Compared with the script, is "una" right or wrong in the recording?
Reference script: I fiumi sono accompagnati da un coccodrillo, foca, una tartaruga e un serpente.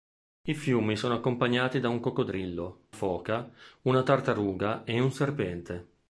right